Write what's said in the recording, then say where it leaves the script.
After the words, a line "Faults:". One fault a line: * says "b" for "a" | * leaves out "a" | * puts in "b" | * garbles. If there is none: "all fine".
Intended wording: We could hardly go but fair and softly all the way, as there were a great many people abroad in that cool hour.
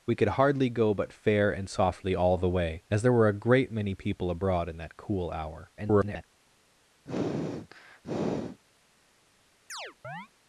We could hardly go but fair and softly all the way, as there were a great many people abroad in that cool hour. [garbled]
Faults:
* garbles